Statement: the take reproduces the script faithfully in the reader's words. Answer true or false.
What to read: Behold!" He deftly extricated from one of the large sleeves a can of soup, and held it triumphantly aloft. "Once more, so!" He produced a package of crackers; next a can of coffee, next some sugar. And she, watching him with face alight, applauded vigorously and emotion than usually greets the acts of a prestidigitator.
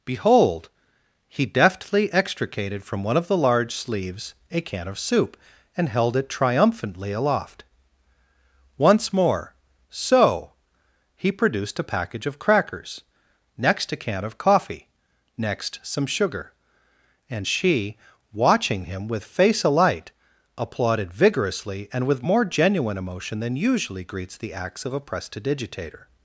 false